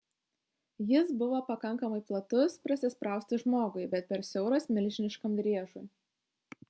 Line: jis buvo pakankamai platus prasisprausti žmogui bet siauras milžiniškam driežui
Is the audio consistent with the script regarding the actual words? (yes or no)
no